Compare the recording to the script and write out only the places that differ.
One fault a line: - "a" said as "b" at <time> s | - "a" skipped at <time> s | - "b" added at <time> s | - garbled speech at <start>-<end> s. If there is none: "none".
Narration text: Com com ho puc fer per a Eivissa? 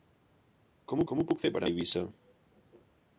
none